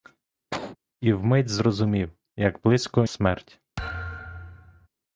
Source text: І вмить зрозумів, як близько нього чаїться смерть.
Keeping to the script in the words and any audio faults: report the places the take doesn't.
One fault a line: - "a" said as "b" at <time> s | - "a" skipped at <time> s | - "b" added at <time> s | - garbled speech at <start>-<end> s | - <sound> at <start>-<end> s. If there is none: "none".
- cough at 0.5-0.8 s
- "нього чаїться" skipped at 3.1 s
- thud at 3.8-4.9 s